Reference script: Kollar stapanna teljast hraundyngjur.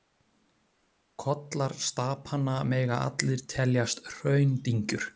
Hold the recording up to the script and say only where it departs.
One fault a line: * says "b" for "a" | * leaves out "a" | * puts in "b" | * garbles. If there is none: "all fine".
* puts in "mega allir"